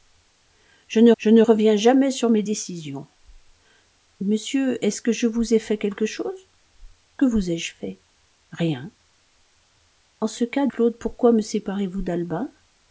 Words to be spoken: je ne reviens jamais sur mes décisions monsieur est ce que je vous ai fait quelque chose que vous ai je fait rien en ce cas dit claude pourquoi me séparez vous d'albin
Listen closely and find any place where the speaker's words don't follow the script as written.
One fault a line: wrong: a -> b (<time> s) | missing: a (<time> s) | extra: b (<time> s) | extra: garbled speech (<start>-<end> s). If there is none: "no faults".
extra: je ne (1.2 s)
missing: dit (10.7 s)